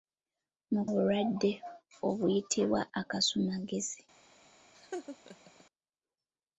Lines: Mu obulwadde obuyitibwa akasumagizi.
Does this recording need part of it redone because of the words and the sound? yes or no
yes